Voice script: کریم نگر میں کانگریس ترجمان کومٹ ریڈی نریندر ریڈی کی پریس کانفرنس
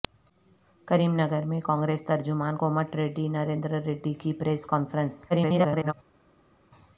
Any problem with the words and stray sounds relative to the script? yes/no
yes